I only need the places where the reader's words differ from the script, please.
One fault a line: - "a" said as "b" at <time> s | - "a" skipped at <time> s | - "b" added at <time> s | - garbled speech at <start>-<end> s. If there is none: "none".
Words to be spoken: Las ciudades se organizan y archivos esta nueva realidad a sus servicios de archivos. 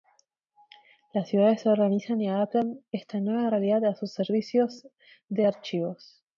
- "archivos" said as "adaptan" at 2.3 s